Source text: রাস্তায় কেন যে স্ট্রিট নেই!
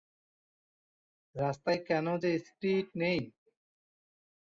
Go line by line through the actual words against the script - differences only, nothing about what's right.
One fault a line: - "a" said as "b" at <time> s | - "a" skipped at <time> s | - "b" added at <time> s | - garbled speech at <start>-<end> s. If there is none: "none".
none